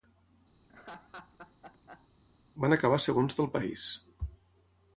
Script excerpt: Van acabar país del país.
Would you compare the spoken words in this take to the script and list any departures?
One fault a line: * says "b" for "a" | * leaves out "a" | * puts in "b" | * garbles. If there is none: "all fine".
* says "segons" for "país"